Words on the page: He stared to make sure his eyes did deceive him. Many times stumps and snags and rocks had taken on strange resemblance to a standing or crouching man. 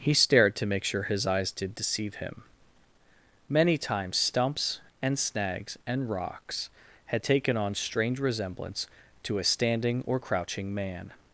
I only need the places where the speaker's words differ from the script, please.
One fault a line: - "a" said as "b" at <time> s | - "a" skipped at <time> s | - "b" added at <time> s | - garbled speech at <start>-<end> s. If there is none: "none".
none